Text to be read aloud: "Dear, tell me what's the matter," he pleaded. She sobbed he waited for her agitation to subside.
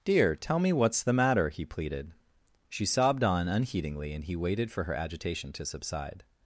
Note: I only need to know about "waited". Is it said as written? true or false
true